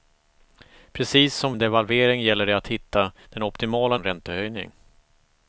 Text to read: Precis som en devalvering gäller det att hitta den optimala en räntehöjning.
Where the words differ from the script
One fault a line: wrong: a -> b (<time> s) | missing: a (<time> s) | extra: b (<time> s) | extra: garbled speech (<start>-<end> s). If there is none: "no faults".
no faults